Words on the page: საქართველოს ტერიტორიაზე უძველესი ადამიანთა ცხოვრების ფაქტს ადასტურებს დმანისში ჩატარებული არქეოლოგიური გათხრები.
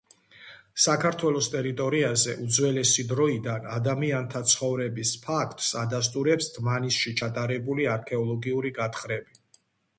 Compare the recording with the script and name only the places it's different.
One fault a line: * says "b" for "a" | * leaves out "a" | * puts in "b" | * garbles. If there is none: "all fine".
* puts in "დროიდან"